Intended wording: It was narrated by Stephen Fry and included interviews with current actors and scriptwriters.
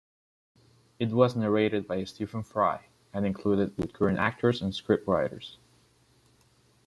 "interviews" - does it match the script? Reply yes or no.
no